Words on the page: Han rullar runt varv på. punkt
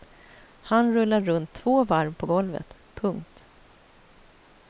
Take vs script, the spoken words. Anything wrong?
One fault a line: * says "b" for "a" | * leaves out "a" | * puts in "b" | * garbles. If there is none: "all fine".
* puts in "två"
* puts in "golvet"